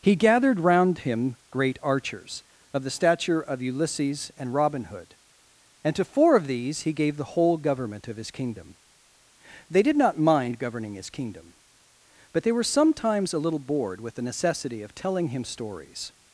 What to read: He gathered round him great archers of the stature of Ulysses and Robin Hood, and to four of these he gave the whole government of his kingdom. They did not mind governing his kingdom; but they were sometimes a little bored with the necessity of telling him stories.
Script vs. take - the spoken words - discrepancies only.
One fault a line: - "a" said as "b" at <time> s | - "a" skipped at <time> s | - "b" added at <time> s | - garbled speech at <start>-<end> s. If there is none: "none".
none